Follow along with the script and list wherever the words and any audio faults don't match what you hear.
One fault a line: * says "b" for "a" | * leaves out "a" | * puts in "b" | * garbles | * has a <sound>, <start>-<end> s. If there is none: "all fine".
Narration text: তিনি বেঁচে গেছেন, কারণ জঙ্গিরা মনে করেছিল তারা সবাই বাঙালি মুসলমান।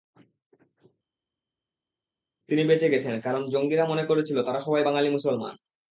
all fine